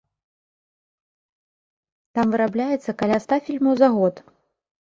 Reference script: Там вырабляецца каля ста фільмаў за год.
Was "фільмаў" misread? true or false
false